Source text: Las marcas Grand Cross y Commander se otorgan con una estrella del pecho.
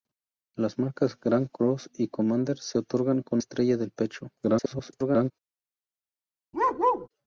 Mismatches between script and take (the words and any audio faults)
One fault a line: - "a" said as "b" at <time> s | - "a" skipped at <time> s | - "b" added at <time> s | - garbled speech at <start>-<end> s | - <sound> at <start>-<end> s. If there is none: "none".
- "una" skipped at 3.4 s
- garbled speech at 4.4-5.3 s
- bark at 6.5-7.1 s